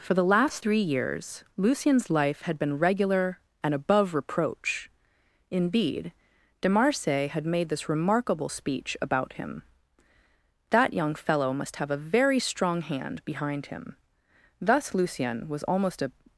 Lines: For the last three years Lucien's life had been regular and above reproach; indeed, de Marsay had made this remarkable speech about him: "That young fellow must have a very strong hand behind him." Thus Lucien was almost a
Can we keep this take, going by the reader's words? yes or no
yes